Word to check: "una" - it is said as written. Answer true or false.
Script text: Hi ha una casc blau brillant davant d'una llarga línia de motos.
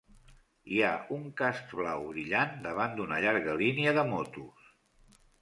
false